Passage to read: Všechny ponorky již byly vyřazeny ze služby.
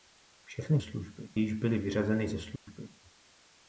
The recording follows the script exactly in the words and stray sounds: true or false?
false